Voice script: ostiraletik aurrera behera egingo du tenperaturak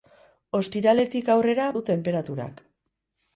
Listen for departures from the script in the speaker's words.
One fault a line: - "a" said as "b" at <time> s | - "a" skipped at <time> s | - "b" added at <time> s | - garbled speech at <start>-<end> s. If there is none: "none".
- "behera egingo" skipped at 1.7 s